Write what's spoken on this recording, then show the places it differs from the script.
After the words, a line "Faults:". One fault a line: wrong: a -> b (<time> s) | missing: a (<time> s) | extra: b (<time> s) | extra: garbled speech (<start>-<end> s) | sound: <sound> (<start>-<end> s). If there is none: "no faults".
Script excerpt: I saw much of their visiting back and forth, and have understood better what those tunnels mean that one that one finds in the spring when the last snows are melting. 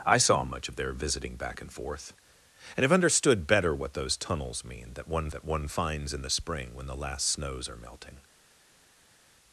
I saw much of their visiting back and forth, and have understood better what those tunnels mean that one that one finds in the spring when the last snows are melting.
Faults:
no faults